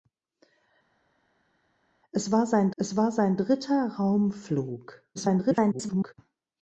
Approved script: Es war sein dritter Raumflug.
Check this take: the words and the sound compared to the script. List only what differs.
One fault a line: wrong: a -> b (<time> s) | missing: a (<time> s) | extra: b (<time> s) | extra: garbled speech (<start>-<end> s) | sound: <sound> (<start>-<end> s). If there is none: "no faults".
extra: es war sein (2.8 s)
extra: garbled speech (5.1-6.1 s)